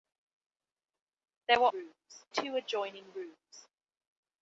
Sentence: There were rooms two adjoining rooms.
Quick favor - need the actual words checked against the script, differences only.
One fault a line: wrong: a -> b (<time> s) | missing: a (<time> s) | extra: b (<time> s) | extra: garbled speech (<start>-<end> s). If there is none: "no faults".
no faults